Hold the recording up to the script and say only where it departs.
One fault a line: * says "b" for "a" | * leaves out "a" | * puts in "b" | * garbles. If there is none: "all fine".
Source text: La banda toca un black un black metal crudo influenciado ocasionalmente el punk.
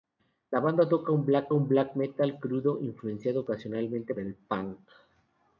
all fine